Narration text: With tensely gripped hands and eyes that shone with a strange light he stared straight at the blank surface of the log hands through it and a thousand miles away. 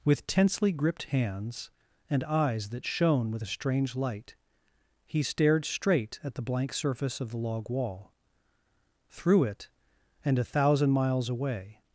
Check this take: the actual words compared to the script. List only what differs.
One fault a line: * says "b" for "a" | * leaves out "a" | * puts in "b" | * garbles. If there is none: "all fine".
* says "wall" for "hands"